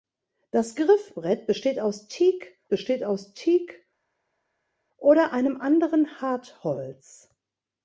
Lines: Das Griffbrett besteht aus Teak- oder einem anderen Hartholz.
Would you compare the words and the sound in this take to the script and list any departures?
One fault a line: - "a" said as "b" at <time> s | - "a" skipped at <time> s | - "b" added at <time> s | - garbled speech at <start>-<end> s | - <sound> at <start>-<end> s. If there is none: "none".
- "besteht aus Teak" added at 2.7 s